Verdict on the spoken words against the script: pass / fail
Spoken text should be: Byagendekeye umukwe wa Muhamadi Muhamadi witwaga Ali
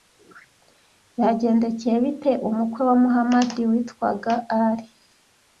fail